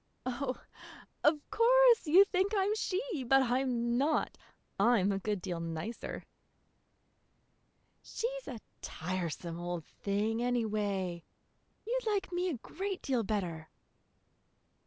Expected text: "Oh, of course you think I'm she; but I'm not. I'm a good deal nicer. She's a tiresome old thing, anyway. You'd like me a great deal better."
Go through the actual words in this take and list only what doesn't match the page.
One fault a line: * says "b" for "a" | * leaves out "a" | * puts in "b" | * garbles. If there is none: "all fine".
all fine